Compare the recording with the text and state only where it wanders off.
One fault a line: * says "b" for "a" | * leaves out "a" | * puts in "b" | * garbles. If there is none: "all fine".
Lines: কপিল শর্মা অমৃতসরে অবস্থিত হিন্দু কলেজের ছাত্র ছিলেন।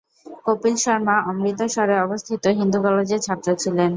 all fine